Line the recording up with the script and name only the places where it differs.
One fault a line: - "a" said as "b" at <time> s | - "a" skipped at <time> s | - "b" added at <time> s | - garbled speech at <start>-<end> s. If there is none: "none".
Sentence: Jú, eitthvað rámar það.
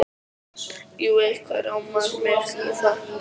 - "mig í" added at 2.2 s